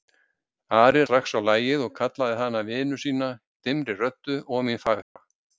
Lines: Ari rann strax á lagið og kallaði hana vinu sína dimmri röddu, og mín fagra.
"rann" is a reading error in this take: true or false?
true